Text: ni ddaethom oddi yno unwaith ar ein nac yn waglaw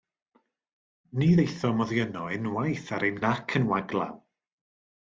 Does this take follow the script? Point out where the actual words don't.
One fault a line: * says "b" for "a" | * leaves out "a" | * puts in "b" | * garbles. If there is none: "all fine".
all fine